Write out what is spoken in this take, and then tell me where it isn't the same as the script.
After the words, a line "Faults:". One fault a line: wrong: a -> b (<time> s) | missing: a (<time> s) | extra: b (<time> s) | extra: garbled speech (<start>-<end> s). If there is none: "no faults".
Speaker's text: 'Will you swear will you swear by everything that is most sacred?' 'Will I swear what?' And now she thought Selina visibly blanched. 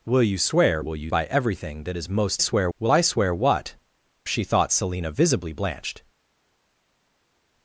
'Will you swear will you by everything that is most swear?' 'Will I swear what?' She thought Selina visibly blanched.
Faults:
missing: swear (1.1 s)
wrong: sacred -> swear (2.4 s)
missing: And now (3.7 s)